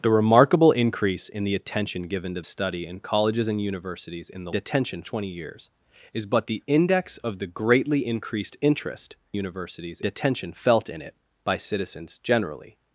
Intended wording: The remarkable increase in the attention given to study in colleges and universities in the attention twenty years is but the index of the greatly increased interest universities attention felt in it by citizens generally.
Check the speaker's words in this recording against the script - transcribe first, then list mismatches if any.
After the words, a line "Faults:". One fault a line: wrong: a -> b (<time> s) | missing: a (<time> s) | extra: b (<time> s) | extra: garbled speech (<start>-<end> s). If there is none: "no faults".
The remarkable increase in the attention given to study in colleges and universities in the attention twenty years is but the index of the greatly increased interest universities attention felt in it by citizens generally.
Faults:
no faults